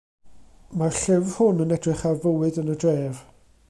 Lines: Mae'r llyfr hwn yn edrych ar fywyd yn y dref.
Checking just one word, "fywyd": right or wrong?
right